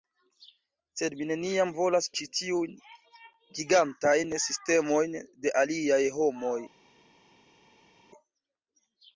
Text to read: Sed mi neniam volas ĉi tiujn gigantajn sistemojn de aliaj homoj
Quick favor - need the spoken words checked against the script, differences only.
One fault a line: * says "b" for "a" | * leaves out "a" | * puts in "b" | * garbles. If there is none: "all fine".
all fine